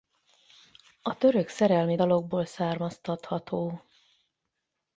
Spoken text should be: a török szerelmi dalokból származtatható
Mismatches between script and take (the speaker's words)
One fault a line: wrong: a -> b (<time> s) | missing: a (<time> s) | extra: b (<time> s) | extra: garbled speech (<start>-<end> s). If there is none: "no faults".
no faults